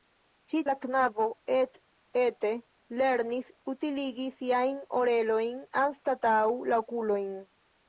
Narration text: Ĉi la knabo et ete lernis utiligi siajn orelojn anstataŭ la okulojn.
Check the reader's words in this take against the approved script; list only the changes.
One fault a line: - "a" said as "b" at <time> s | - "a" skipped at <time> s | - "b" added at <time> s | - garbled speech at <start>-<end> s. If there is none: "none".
none